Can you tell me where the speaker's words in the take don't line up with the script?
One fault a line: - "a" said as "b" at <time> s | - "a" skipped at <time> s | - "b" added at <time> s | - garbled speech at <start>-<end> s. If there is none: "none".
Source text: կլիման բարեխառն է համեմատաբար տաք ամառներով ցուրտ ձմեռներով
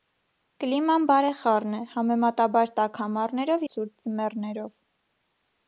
none